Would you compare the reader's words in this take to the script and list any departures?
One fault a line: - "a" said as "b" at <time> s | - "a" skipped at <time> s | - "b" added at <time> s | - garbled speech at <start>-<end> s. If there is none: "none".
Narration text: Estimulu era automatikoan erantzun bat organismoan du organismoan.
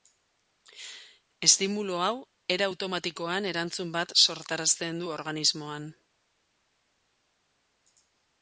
- "hau" added at 2.0 s
- "organismoan" said as "sortarazten" at 4.2 s